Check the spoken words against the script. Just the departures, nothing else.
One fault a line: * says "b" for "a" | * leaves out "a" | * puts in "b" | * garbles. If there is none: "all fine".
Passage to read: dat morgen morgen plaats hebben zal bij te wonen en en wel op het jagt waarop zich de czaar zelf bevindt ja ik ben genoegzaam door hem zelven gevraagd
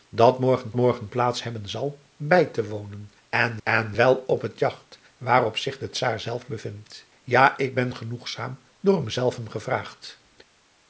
all fine